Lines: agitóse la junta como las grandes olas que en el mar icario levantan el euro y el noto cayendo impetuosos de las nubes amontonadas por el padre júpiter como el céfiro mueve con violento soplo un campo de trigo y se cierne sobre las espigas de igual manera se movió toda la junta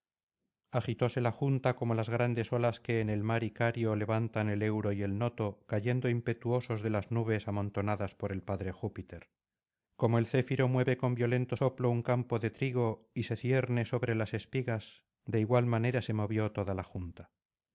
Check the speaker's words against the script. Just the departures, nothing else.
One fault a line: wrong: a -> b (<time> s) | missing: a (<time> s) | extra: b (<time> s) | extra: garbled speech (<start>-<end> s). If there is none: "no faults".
no faults